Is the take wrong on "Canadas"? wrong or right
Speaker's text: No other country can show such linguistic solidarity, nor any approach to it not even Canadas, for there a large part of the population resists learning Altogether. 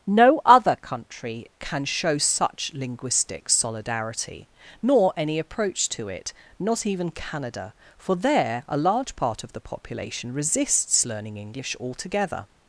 wrong